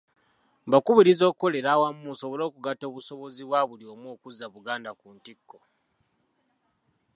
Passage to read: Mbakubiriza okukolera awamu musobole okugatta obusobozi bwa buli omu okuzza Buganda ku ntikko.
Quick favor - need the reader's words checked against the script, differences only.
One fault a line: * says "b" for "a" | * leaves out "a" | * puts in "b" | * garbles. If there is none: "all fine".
all fine